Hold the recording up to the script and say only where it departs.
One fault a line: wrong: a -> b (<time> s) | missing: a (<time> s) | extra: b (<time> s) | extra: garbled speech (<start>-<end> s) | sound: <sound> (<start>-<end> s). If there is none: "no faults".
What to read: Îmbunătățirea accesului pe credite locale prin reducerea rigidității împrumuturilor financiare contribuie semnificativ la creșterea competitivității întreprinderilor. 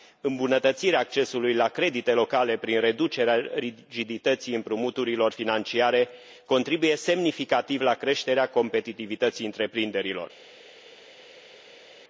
wrong: pe -> la (1.5 s)